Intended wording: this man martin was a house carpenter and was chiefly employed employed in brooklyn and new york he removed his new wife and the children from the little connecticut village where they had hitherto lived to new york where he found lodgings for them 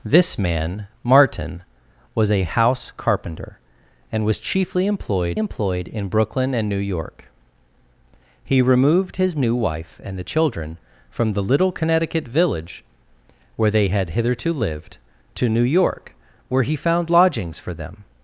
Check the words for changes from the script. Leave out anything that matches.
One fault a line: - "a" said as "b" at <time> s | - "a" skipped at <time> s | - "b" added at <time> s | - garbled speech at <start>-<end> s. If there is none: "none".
none